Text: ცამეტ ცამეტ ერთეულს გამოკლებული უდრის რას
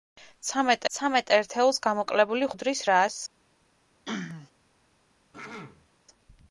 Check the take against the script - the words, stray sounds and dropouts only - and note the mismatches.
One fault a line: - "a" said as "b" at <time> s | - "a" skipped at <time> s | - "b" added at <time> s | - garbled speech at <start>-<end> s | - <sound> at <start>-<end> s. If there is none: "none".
- throat clearing at 4.1-4.5 s
- throat clearing at 5.3-5.9 s